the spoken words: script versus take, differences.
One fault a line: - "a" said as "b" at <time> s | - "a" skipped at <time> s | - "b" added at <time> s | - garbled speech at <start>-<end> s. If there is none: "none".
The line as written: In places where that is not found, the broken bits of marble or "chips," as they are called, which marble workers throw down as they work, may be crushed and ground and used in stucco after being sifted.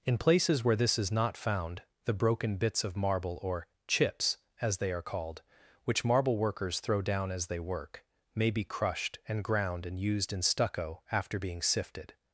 - "that" said as "this" at 0.8 s